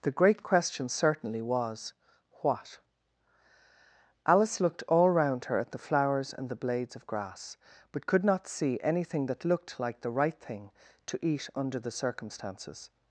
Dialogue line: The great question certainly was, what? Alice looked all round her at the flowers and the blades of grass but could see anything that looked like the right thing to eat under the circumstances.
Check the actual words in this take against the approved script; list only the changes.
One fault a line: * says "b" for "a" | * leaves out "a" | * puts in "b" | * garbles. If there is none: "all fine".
* puts in "not"